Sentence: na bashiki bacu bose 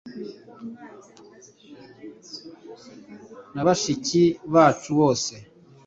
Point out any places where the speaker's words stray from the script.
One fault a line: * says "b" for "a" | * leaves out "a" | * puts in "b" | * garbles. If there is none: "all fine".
all fine